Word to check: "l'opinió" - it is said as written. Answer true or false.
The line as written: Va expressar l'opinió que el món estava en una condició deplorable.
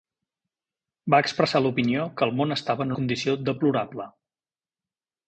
true